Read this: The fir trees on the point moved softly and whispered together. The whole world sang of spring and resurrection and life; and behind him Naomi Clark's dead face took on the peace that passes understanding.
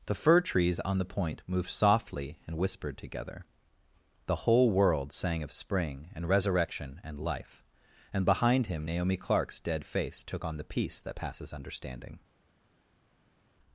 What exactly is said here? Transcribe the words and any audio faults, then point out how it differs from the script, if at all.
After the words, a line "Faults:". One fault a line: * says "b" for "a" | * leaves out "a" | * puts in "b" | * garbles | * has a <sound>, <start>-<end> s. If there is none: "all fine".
The fir trees on the point moved softly and whispered together. The whole world sang of spring and resurrection and life; and behind him Naomi Clark's dead face took on the peace that passes understanding.
Faults:
all fine